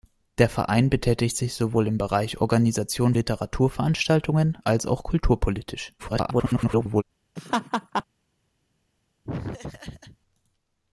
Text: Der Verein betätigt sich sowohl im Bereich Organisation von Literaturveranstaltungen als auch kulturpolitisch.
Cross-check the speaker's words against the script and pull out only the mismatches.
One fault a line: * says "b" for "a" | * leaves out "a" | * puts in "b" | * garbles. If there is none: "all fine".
* leaves out "von"
* garbles